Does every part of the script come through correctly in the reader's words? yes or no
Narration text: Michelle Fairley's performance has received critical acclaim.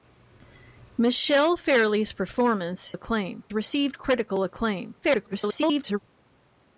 no